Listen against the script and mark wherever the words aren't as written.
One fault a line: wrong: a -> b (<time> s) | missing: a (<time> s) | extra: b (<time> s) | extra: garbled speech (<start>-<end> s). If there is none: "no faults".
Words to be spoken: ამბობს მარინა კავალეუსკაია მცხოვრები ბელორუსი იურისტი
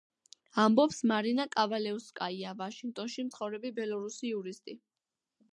extra: ვაშინგტონში (2.6 s)